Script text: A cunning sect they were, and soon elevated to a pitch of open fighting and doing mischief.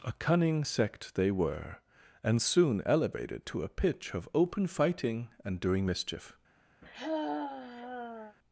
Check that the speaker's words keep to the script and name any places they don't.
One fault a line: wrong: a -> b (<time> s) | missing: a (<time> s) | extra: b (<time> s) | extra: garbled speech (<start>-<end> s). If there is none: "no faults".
no faults